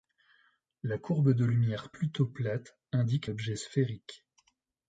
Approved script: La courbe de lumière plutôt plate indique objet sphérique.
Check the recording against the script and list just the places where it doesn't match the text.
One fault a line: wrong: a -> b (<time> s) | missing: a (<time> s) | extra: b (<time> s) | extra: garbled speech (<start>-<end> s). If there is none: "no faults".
no faults